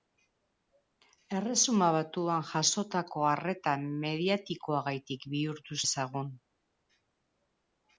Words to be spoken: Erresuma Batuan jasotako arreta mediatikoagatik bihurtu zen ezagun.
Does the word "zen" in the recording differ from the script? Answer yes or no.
yes